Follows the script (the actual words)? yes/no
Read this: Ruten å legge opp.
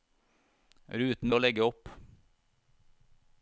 yes